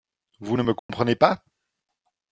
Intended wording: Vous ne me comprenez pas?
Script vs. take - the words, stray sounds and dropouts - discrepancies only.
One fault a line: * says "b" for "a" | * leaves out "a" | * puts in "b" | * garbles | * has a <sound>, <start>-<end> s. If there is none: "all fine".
* has a dropout, 0.8-0.9 s